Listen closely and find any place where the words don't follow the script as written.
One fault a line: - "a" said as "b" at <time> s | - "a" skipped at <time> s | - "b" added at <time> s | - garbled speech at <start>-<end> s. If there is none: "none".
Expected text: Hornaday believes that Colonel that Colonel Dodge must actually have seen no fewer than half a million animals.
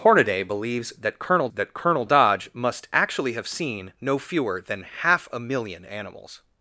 none